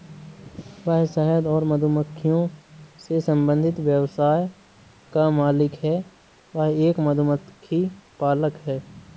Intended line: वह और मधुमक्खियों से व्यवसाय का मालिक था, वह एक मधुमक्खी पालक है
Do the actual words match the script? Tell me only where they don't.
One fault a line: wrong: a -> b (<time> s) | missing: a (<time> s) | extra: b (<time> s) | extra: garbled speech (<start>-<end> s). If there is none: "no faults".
extra: शहद (1.1 s)
extra: संबंधित (3.2 s)
wrong: था -> है (5.7 s)